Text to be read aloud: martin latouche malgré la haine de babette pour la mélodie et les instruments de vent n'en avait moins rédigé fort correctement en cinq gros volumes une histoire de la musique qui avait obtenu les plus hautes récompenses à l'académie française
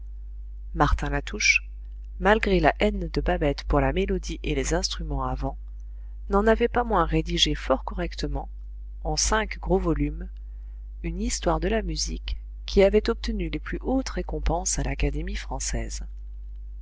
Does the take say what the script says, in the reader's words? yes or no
no